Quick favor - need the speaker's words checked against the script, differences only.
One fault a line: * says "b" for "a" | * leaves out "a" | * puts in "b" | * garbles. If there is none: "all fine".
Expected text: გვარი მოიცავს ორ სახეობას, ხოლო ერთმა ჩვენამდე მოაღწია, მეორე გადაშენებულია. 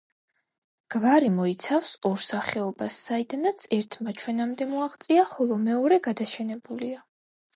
* says "საიდანაც" for "ხოლო"
* puts in "ხოლო"